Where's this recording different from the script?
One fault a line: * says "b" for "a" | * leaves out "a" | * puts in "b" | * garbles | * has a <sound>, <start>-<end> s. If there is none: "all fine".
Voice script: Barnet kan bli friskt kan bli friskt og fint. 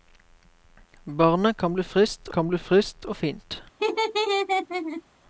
* has a laugh, 3.8-5.0 s